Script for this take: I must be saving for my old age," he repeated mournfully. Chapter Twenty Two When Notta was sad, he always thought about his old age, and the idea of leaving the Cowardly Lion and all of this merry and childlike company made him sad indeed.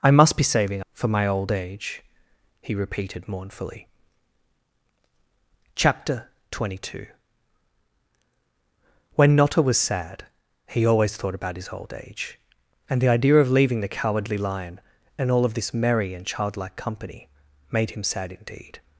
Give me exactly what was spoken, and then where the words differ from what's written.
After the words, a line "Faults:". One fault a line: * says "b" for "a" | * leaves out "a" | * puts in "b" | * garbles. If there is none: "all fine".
I must be saving for my old age," he repeated mournfully. Chapter Twenty Two When Notta was sad, he always thought about his old age, and the idea of leaving the Cowardly Lion and all of this merry and childlike company made him sad indeed.
Faults:
all fine